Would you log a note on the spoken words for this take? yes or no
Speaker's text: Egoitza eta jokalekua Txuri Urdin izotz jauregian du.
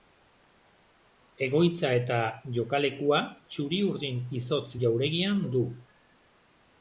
no